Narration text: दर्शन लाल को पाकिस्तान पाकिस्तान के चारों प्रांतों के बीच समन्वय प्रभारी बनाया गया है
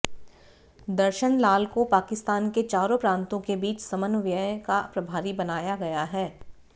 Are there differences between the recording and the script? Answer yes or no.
yes